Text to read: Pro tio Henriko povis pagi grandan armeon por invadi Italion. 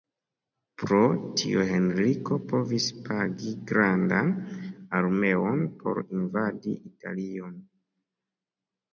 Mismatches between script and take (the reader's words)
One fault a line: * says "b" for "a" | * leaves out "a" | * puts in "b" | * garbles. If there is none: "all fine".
all fine